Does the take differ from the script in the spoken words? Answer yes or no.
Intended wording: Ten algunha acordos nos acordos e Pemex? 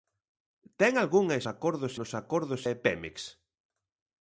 no